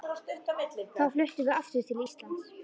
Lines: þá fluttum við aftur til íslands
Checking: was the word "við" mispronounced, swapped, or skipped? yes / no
no